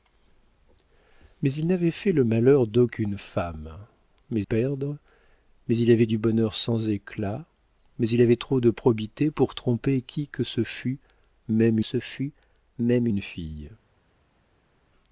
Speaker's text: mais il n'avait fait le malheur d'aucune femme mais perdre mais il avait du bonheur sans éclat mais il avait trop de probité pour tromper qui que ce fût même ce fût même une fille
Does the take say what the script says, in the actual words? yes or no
yes